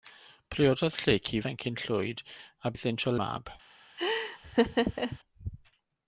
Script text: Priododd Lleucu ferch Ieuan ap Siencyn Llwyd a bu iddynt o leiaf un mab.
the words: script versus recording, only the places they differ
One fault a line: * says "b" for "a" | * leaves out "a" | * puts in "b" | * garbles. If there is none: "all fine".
* leaves out "ferch Ieuan ap"
* leaves out "bu"
* leaves out "leiaf un"